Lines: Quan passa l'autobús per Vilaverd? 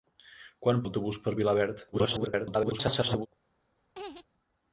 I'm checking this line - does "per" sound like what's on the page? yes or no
yes